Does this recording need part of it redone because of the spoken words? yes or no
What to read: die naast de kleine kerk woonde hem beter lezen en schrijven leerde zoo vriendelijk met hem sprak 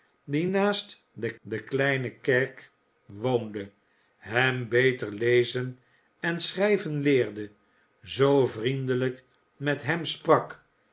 yes